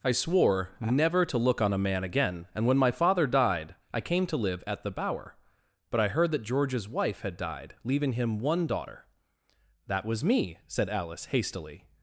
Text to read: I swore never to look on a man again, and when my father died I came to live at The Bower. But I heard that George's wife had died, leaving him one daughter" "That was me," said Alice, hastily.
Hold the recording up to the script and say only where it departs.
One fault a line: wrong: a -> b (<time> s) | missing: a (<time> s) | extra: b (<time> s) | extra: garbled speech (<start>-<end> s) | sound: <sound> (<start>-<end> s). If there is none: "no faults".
no faults